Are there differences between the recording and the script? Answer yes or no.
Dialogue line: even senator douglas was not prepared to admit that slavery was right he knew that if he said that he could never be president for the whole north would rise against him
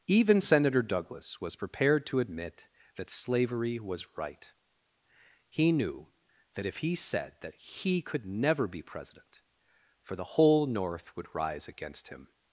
yes